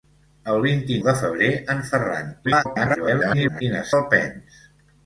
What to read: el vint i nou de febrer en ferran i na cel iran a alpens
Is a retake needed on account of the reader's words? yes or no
yes